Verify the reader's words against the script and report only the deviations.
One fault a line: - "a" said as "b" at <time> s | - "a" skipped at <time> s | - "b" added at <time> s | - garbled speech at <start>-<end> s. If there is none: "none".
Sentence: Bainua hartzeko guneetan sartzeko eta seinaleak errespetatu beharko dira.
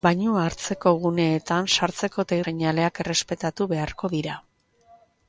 none